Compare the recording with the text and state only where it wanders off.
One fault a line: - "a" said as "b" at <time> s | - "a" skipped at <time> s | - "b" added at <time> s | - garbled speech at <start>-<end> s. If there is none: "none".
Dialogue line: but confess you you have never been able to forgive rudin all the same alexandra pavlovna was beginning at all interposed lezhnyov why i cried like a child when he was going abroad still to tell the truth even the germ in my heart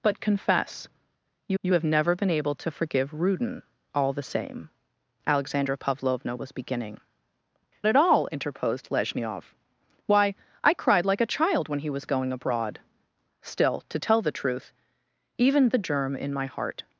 none